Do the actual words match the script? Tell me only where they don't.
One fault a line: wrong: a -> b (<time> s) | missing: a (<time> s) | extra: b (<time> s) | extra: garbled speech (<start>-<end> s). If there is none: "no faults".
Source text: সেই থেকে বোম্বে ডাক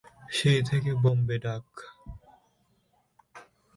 no faults